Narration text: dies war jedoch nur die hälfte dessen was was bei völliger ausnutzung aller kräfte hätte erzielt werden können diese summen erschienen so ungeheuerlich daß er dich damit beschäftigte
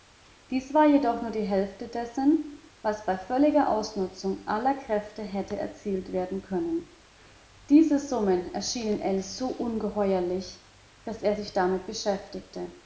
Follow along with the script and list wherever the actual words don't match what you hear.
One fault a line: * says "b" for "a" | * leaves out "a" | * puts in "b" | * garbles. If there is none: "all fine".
* leaves out "was"
* puts in "ell"
* says "sich" for "dich"